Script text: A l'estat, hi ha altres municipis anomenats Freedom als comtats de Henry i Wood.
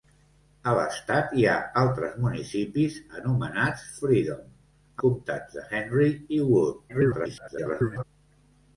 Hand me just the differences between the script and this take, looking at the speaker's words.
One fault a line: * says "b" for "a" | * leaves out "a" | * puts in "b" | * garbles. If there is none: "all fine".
* leaves out "als"
* garbles